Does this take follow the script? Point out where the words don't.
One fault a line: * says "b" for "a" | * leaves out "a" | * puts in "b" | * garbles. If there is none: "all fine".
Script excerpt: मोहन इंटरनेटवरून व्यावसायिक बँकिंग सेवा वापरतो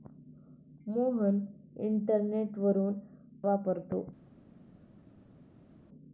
* leaves out "व्यावसायिक बँकिंग सेवा"